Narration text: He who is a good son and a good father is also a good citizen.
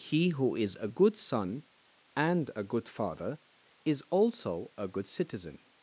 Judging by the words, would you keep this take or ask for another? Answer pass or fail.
pass